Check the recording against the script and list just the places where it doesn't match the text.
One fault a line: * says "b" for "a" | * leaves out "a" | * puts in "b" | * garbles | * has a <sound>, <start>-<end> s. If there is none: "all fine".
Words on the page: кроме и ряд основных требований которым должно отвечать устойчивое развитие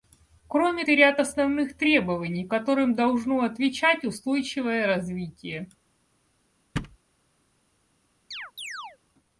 * has a thud, 6.8-7.0 s
* has a chirp, 8.3-9.0 s